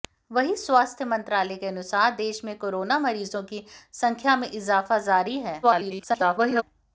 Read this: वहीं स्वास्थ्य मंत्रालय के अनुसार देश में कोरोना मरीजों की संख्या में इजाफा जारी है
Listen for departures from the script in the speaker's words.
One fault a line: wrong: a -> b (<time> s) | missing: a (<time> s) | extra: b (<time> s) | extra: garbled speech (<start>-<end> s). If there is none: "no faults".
extra: garbled speech (5.6-6.6 s)